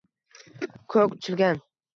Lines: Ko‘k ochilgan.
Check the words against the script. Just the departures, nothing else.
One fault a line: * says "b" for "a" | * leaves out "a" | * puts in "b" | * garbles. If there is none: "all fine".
all fine